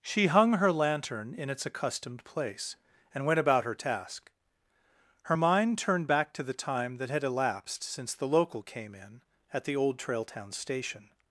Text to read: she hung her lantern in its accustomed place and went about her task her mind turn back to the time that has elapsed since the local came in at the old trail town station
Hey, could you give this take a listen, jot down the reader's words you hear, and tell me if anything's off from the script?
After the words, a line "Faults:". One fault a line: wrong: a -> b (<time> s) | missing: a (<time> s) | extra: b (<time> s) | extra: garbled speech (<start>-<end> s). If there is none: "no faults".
she hung her lantern in its accustomed place and went about her task her mind turned back to the time that had elapsed since the local came in at the old trail town station
Faults:
wrong: turn -> turned (5.8 s)
wrong: has -> had (7.1 s)